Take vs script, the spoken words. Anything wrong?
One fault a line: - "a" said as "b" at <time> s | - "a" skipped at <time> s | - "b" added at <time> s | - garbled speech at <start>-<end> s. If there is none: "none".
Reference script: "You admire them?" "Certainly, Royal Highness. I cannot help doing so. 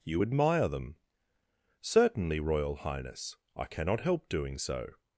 none